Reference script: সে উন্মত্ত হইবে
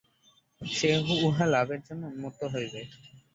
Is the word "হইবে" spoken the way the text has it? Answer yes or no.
yes